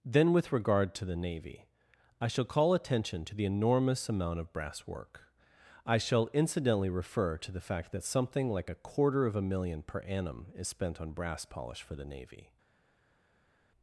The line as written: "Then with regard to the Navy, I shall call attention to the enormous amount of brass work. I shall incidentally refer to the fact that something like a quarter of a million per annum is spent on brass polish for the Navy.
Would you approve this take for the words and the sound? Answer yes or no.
yes